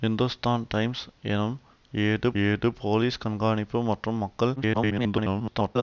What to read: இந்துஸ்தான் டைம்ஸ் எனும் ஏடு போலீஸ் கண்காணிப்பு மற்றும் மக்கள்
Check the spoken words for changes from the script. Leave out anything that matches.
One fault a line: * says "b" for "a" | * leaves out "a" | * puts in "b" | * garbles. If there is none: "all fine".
* puts in "ஏடு"
* garbles